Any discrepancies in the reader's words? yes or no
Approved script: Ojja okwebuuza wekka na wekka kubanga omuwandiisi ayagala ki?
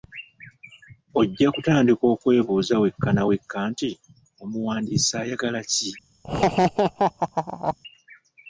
yes